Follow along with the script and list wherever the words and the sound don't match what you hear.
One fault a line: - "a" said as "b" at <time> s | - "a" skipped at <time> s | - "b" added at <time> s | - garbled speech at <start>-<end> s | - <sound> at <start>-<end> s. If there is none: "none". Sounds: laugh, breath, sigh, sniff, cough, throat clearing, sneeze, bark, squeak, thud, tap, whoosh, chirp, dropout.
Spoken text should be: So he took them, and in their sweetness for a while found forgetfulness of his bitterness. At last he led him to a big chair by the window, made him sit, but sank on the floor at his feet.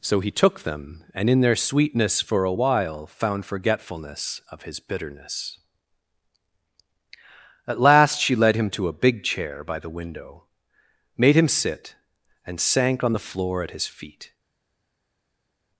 - "he" said as "she" at 8.2 s
- "but" said as "and" at 12.5 s